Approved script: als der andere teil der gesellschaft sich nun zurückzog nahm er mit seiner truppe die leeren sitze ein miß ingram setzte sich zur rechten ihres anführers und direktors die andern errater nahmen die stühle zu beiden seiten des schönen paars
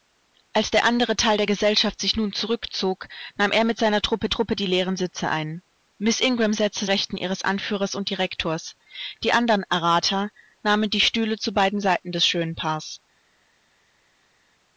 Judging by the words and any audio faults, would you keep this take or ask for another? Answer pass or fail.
fail